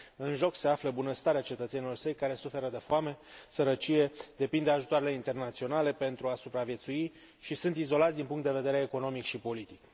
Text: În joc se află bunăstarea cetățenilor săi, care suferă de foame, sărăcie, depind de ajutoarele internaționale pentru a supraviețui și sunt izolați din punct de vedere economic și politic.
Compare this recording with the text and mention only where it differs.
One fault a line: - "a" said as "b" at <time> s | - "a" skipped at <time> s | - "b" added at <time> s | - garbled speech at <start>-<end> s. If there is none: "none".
none